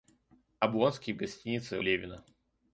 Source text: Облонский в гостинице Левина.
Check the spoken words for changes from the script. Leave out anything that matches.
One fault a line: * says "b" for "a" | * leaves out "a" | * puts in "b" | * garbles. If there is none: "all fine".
all fine